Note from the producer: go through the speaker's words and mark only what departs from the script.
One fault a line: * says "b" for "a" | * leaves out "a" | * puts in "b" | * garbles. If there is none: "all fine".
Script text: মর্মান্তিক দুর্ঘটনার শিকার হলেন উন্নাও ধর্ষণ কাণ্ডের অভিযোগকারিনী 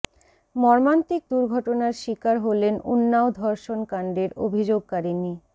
all fine